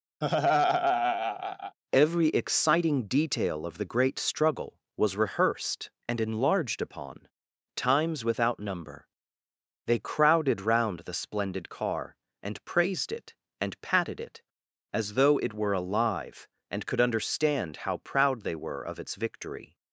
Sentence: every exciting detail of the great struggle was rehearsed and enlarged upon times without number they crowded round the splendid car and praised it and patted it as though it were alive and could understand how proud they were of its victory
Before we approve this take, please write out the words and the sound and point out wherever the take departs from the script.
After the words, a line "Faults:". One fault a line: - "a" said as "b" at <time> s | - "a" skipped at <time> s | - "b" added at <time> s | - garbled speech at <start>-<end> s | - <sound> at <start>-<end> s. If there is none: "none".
every exciting detail of the great struggle was rehearsed and enlarged upon times without number they crowded round the splendid car and praised it and patted it as though it were alive and could understand how proud they were of its victory
Faults:
- laugh at 0.2-1.8 s